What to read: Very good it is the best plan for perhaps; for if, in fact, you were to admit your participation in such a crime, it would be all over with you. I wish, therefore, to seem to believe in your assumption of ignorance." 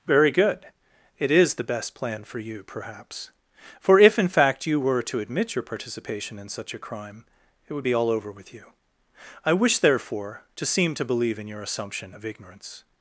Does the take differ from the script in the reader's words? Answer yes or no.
yes